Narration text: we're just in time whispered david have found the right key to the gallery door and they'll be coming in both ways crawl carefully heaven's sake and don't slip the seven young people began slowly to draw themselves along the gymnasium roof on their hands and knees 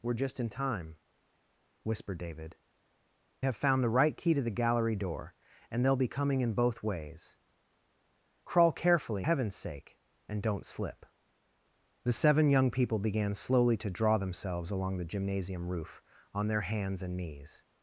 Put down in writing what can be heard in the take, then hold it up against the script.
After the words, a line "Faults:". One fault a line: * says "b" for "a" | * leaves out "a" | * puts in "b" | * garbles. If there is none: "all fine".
we're just in time whispered david have found the right key to the gallery door and they'll be coming in both ways crawl carefully heaven's sake and don't slip the seven young people began slowly to draw themselves along the gymnasium roof on their hands and knees
Faults:
all fine